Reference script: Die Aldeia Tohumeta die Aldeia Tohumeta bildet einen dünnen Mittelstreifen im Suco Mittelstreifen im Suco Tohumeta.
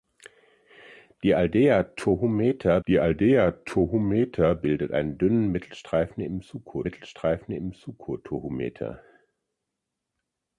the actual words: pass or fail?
pass